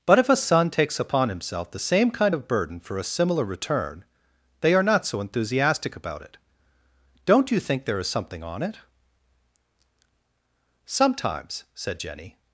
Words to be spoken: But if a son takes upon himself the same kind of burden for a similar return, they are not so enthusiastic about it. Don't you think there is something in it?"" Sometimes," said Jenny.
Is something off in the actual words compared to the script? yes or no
yes